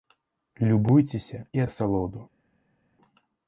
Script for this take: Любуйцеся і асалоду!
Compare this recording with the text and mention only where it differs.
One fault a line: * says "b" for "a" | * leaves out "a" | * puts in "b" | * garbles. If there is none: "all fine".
all fine